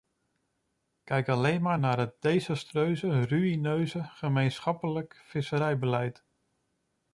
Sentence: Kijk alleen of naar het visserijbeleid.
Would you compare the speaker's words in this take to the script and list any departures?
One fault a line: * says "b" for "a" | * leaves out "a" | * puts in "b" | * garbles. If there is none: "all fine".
* says "maar" for "of"
* puts in "desastreuze ruïneuze gemeenschappelijk"